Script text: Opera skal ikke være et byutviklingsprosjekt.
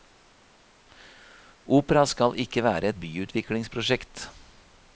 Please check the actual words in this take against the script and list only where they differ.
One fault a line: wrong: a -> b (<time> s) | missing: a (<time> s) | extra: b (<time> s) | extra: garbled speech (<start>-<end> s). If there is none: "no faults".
no faults